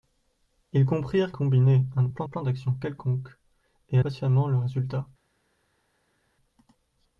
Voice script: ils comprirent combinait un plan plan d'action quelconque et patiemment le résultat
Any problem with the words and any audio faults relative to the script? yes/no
no